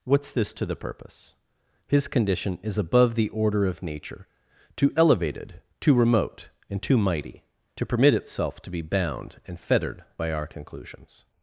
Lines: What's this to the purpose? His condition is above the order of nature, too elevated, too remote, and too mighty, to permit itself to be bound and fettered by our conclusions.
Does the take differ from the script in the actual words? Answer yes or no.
no